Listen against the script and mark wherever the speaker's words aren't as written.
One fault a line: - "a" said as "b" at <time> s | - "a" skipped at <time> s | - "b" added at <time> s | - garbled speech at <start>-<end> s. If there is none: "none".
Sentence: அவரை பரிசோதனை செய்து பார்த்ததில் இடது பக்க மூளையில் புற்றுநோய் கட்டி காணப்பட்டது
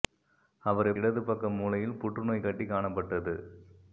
- "பரிசோதனை செய்து பார்த்ததில்" skipped at 0.9 s